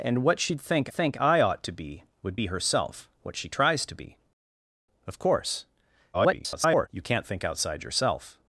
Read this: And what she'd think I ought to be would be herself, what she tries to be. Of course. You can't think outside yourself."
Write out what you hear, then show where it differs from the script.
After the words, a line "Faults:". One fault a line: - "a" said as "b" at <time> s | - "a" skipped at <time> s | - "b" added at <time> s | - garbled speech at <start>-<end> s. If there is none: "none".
And what she'd think think I ought to be would be herself, what she tries to be. Of course. [garbled] You can't think outside yourself."
Faults:
- "think" added at 0.9 s
- garbled speech at 6.1-6.9 s